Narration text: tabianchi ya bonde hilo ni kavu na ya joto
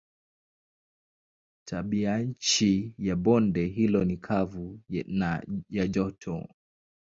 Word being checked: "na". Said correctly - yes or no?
yes